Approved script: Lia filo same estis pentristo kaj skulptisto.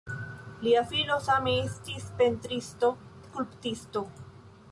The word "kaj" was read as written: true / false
false